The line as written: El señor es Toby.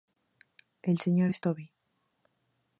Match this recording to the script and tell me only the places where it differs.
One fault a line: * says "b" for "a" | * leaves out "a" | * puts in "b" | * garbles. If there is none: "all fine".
all fine